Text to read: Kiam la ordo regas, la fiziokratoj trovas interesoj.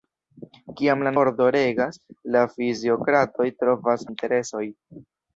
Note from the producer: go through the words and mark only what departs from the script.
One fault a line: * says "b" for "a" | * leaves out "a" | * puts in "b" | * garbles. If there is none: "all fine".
all fine